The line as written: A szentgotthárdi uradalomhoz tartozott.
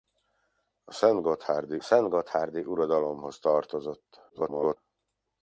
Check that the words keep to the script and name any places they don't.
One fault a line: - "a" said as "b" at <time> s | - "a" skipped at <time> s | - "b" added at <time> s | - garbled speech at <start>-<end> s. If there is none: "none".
- "szentgotthárdi" added at 1.8 s
- garbled speech at 4.3-4.8 s